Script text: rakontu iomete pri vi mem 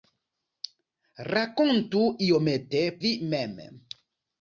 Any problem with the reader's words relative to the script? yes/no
yes